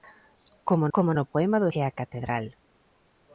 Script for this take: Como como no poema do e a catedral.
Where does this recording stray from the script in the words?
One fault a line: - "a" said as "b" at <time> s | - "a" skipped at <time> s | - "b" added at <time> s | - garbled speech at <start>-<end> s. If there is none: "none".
none